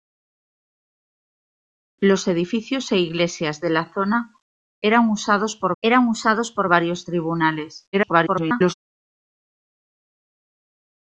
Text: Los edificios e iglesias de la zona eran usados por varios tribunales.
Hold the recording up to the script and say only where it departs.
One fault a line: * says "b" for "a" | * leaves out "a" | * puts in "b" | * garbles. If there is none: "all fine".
* puts in "eran usados por"
* garbles